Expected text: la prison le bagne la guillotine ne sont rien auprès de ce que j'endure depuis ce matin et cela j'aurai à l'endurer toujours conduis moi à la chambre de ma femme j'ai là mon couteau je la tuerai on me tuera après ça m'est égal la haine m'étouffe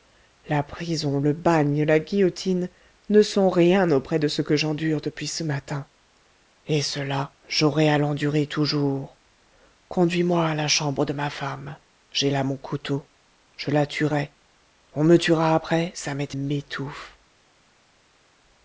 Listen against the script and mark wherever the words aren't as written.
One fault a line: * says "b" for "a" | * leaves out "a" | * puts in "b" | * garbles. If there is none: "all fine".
* leaves out "égal la haine"